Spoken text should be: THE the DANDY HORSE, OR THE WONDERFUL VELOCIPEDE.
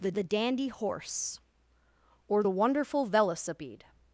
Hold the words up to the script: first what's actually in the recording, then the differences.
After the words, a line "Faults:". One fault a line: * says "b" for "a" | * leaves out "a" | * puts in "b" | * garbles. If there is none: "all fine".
THE the DANDY HORSE, OR THE WONDERFUL VELOCIPEDE.
Faults:
all fine